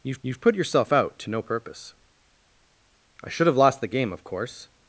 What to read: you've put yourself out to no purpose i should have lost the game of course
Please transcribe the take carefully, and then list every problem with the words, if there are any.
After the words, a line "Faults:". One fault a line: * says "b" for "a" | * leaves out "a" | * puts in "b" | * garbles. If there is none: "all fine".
you've you've put yourself out to no purpose i should have lost the game of course
Faults:
* puts in "you've"